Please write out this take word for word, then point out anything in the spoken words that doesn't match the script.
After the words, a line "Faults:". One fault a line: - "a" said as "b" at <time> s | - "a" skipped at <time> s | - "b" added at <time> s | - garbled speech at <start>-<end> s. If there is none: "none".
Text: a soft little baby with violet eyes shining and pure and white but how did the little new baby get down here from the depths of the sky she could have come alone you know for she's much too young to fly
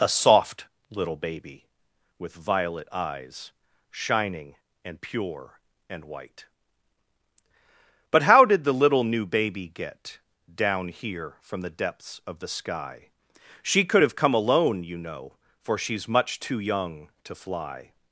a soft little baby with violet eyes shining and pure and white but how did the little new baby get down here from the depths of the sky she could have come alone you know for she's much too young to fly
Faults:
none